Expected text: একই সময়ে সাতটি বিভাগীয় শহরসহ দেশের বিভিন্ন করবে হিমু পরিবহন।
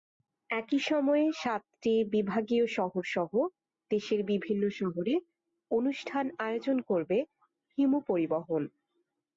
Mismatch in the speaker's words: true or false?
true